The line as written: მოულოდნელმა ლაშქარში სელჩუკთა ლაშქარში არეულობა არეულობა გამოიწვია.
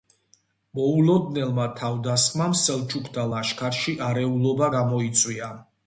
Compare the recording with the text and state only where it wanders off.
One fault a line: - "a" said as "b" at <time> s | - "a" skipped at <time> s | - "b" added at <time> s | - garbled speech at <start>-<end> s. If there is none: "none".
- "ლაშქარში" said as "თავდასხმამ" at 1.8 s
- "არეულობა" skipped at 4.7 s